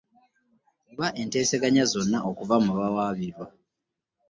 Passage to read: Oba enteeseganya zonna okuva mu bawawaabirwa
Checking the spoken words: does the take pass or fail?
pass